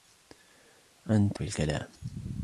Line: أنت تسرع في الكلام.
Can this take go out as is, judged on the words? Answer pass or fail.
fail